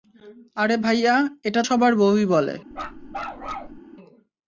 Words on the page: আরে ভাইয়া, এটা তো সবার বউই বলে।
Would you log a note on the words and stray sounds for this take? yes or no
yes